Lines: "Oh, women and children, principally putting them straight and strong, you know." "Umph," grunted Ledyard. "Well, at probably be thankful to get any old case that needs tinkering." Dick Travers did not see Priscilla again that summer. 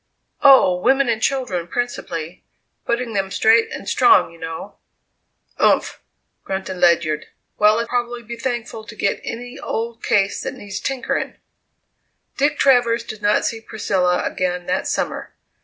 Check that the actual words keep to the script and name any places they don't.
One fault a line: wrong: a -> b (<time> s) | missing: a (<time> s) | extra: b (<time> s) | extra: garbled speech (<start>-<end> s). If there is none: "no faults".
no faults